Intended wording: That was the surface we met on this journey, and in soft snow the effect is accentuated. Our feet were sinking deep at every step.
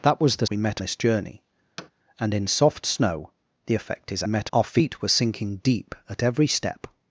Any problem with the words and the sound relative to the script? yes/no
yes